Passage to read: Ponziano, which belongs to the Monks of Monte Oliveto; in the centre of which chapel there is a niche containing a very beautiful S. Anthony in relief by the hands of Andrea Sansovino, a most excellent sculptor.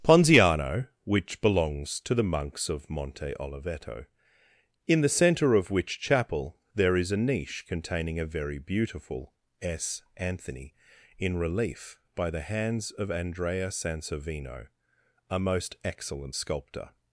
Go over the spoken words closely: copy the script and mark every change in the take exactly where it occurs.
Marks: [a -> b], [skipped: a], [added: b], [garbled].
Ponziano, which belongs to the Monks of Monte Oliveto; in the centre of which chapel there is a niche containing a very beautiful S. Anthony in relief by the hands of Andrea Sansovino, a most excellent sculptor.